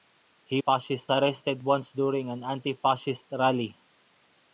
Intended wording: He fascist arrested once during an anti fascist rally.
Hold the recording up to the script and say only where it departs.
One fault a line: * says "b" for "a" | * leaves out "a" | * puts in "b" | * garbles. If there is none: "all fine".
all fine